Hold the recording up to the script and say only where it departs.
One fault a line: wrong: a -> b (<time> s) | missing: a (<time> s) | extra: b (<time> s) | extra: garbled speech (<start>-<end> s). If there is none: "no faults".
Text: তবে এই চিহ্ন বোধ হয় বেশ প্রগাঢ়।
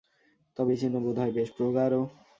no faults